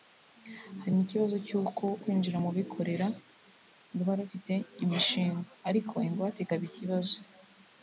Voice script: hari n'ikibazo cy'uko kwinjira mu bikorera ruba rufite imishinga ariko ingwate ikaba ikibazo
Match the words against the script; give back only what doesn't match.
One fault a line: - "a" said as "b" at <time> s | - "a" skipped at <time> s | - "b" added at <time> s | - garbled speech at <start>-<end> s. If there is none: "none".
none